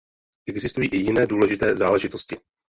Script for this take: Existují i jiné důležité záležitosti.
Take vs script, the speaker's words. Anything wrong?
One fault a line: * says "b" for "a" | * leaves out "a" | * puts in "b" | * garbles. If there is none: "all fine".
all fine